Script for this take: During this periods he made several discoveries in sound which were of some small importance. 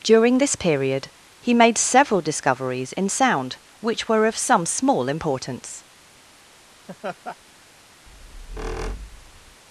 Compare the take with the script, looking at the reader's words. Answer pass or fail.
fail